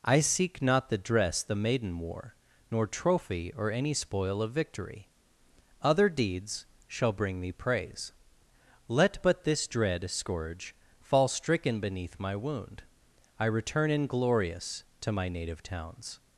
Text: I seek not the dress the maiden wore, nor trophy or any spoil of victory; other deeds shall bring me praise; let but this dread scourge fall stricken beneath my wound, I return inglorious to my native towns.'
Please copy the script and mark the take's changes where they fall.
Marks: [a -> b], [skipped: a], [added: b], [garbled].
I seek not the dress the maiden wore, nor trophy or any spoil of victory; other deeds shall bring me praise; let but this dread scourge fall stricken beneath my wound, I return inglorious to my native towns.'